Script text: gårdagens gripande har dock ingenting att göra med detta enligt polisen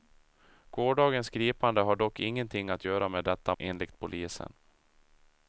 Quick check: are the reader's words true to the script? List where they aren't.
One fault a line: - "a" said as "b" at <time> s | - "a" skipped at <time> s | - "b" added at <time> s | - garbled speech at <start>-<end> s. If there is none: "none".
none